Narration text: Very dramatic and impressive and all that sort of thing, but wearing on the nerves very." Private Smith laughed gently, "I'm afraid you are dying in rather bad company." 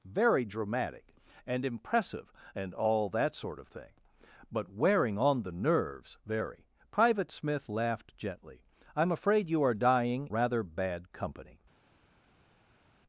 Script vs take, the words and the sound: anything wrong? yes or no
yes